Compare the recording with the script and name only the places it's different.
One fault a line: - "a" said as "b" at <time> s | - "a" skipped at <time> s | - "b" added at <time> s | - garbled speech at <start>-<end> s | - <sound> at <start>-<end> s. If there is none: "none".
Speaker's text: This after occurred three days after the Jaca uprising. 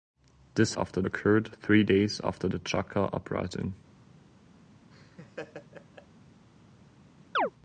- laugh at 4.9-6.1 s
- chirp at 7.3-7.5 s